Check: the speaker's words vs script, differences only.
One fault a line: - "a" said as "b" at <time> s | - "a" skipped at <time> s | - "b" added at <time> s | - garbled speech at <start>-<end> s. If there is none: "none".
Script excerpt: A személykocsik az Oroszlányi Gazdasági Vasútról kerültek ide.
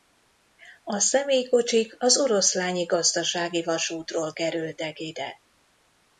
none